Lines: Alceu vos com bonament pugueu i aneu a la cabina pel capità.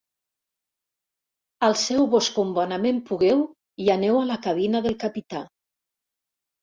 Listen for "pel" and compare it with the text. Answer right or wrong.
wrong